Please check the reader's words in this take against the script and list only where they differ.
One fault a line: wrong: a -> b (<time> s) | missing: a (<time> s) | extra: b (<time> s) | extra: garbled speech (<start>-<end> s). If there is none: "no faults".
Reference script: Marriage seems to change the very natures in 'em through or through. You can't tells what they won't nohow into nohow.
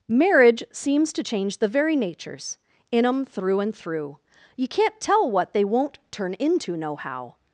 wrong: or -> and (3.6 s)
wrong: tells -> tell (5.0 s)
wrong: nohow -> turn (6.1 s)